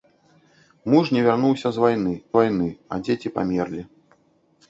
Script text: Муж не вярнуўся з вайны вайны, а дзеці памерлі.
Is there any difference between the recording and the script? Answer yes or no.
no